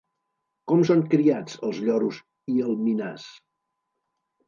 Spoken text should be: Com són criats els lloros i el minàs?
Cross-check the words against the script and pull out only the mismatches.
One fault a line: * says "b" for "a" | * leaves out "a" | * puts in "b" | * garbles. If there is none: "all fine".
all fine